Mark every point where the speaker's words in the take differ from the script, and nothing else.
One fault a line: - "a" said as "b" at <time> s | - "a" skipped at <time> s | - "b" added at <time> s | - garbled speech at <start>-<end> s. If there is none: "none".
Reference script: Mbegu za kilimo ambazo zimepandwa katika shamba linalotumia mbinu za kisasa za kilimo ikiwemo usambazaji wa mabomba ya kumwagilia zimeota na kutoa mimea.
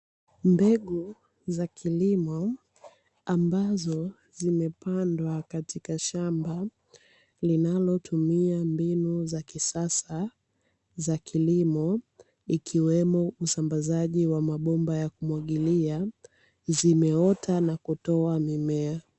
none